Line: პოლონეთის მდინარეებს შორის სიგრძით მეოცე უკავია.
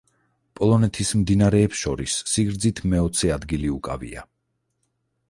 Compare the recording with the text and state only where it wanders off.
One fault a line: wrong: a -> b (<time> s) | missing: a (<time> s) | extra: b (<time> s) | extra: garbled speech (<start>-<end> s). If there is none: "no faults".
extra: ადგილი (3.4 s)